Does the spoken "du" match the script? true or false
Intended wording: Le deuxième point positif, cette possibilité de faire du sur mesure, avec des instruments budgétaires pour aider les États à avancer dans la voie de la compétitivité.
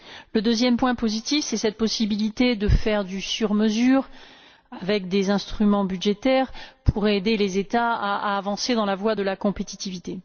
true